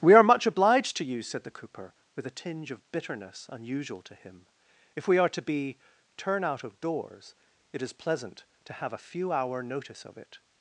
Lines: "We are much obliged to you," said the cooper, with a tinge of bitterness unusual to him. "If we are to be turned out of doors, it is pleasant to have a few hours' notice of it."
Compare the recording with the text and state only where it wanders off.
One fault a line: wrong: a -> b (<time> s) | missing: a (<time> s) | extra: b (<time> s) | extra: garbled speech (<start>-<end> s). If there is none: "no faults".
wrong: turned -> turn (6.2 s)
wrong: hours -> hour (9.3 s)